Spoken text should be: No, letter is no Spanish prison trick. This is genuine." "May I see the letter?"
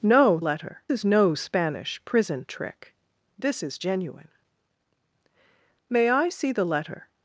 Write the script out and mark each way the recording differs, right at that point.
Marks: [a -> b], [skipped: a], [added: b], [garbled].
No, letter is no Spanish prison trick. This is genuine." "May I see the letter?"